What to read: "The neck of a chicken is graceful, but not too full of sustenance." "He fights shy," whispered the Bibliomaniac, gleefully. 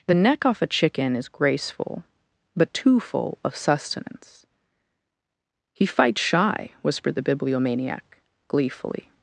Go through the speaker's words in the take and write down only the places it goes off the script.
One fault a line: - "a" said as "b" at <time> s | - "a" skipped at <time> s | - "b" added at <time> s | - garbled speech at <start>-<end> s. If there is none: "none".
- "of" said as "off" at 0.4 s
- "not" skipped at 2.7 s